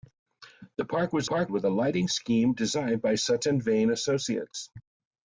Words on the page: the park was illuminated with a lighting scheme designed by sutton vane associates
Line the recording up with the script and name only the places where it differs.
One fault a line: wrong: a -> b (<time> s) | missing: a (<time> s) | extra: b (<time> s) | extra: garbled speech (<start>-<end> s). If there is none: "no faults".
wrong: illuminated -> park (1.2 s)